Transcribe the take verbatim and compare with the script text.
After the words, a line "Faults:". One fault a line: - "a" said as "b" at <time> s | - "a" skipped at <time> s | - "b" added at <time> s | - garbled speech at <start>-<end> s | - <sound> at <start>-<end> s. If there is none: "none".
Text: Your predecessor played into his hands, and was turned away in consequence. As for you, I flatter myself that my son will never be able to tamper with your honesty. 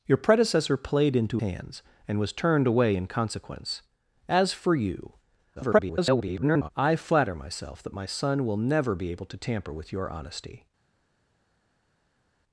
Your predecessor played into hands, and was turned away in consequence. As for you, [garbled] I flatter myself that my son will never be able to tamper with your honesty.
Faults:
- "his" skipped at 1.4 s
- garbled speech at 5.6-6.7 s